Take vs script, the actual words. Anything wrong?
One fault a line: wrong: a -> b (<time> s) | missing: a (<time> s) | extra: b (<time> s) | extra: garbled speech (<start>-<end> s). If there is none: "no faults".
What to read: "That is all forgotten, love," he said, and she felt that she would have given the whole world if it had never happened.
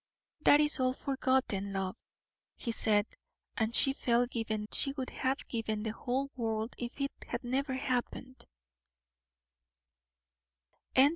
wrong: that -> given (4.3 s)